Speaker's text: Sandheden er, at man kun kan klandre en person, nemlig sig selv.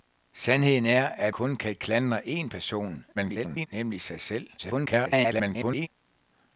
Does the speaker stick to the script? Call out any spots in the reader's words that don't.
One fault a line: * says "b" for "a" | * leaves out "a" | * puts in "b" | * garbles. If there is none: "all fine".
* leaves out "man"
* garbles
* garbles